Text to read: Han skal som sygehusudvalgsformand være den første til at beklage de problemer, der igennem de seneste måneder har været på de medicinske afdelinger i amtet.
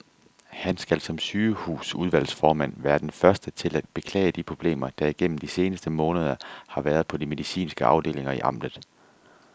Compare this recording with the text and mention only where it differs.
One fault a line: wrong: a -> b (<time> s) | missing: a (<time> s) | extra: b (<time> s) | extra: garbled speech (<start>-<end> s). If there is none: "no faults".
no faults